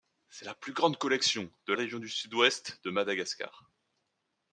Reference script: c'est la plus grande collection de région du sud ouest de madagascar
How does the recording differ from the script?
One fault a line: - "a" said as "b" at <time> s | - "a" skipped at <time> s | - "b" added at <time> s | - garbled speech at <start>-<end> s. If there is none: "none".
none